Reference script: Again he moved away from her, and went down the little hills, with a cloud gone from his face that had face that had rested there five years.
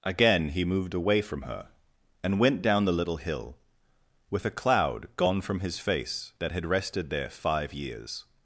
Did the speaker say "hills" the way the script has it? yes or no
no